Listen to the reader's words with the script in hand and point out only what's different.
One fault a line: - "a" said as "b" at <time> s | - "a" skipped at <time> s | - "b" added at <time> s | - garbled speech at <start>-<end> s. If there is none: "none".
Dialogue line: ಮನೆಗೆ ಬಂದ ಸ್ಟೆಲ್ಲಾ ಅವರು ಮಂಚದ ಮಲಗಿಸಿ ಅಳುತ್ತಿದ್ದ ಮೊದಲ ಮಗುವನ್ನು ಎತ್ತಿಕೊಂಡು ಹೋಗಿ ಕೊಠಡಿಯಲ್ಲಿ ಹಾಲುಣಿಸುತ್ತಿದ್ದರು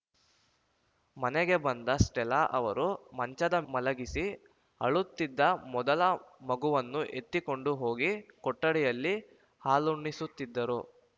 none